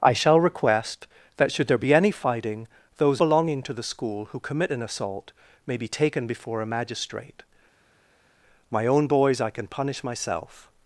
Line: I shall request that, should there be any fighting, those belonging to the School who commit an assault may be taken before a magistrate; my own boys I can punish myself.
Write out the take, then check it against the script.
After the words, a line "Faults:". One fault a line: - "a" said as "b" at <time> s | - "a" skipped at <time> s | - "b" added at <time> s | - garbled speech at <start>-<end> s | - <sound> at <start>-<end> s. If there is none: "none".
I shall request that, should there be any fighting, those belonging to the School who commit an assault may be taken before a magistrate; my own boys I can punish myself.
Faults:
none